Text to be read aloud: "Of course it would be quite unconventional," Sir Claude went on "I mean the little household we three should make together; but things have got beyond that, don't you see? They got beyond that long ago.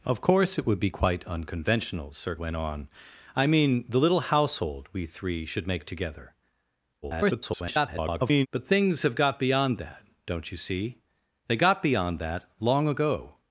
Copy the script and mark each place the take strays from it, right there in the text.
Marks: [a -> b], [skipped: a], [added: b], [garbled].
"Of course it would be quite unconventional," Sir [skipped: Claude] went on "I mean the little household we three should make together; [garbled] but things have got beyond that, don't you see? They got beyond that long ago.